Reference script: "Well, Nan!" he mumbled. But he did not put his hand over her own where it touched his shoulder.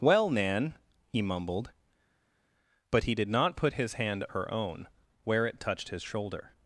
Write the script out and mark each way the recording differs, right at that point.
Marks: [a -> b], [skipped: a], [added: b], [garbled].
"Well, Nan!" he mumbled. But he did not put his hand [skipped: over] her own where it touched his shoulder.